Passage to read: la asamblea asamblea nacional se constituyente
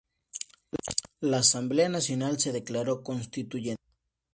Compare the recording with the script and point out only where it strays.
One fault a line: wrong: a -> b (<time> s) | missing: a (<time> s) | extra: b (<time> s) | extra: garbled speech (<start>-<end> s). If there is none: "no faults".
missing: asamblea (1.9 s)
extra: declaró (2.5 s)